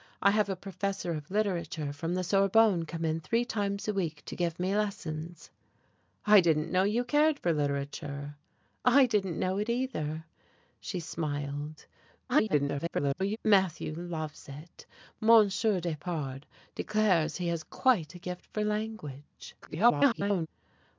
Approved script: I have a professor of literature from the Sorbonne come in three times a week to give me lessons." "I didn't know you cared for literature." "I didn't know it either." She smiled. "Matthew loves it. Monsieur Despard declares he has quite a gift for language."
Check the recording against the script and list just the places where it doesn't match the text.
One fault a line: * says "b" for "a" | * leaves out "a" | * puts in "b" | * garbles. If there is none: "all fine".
* garbles
* garbles